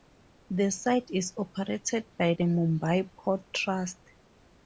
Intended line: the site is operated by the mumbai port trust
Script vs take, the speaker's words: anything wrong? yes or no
no